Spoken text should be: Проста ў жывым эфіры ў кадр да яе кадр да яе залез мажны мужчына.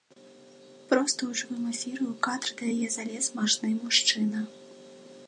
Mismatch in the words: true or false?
true